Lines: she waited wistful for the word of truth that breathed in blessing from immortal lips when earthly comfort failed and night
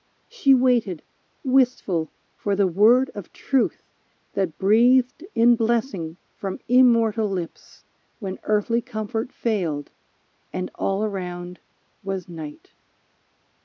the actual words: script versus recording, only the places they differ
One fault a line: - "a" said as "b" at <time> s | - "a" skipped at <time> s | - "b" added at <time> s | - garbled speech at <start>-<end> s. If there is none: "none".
- "all around was" added at 10.7 s